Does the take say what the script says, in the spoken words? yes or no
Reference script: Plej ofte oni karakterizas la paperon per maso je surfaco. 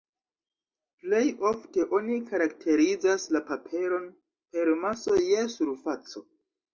yes